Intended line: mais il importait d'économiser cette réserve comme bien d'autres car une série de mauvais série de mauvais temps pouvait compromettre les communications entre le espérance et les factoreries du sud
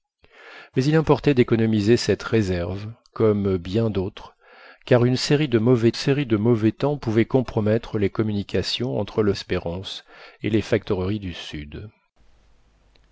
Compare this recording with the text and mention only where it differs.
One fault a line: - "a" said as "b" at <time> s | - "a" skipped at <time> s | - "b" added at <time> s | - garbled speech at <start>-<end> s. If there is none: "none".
none